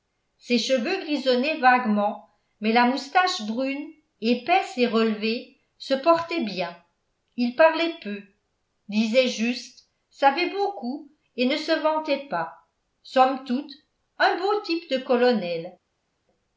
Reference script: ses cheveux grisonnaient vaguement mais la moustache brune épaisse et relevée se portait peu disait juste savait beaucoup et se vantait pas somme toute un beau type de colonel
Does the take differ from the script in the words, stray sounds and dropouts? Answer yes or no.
yes